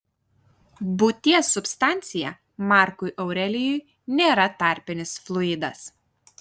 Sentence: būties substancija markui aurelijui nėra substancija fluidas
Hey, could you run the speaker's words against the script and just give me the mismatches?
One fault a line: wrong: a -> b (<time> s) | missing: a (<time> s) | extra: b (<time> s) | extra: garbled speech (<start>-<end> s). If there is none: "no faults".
wrong: substancija -> tarpinis (4.6 s)